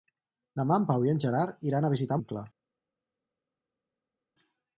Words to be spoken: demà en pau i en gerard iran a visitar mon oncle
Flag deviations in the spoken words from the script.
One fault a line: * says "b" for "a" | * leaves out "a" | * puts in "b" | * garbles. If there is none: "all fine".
* leaves out "mon"